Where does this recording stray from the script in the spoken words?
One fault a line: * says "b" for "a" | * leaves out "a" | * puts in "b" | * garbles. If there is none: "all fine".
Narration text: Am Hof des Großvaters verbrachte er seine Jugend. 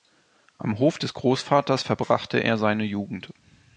all fine